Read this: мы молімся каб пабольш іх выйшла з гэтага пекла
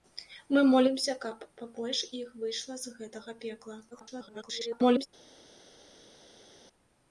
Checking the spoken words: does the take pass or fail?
fail